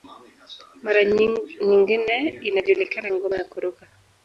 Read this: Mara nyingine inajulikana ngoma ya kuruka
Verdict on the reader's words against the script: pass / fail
pass